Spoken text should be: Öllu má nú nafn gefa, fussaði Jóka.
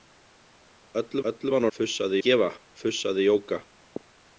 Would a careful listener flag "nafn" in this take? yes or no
yes